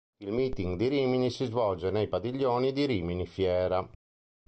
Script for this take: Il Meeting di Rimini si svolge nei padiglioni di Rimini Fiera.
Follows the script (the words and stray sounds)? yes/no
yes